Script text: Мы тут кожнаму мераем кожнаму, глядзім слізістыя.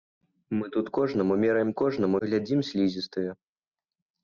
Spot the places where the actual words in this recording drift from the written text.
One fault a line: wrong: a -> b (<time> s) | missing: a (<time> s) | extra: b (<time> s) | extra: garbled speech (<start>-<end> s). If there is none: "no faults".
no faults